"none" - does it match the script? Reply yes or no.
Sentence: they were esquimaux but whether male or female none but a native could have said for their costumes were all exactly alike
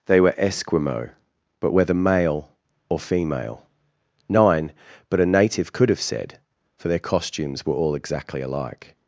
no